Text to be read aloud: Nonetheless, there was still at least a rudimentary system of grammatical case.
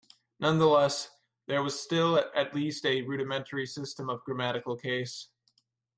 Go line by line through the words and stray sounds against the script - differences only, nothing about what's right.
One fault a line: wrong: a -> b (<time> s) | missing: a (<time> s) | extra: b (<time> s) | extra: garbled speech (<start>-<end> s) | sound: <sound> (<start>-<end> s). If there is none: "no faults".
no faults